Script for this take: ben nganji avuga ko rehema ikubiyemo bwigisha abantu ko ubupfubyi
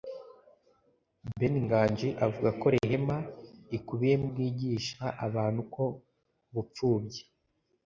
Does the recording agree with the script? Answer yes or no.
yes